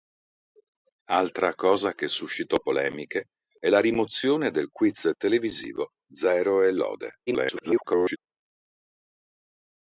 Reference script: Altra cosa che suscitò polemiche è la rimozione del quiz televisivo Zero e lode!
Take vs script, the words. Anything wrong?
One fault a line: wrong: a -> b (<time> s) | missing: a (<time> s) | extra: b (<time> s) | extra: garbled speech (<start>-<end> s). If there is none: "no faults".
extra: garbled speech (7.3-8.2 s)